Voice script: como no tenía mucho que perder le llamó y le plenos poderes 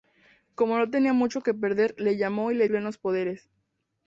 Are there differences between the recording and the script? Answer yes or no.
no